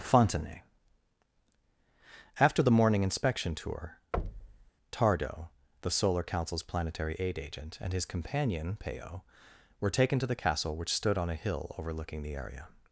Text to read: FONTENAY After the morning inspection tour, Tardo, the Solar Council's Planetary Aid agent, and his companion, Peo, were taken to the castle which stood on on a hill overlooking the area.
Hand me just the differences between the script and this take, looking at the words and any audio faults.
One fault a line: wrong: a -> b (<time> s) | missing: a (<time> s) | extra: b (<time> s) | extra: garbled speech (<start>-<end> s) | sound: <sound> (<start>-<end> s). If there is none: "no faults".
sound: thud (4.1-4.7 s)
missing: on (11.3 s)